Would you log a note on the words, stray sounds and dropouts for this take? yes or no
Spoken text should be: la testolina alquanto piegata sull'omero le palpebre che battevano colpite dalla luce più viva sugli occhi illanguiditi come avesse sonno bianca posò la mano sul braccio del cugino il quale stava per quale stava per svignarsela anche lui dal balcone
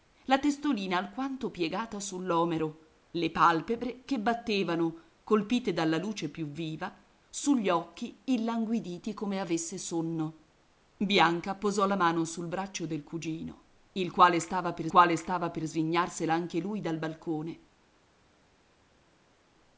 no